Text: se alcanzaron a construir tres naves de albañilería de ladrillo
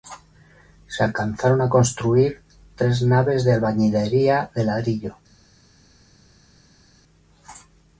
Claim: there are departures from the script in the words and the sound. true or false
false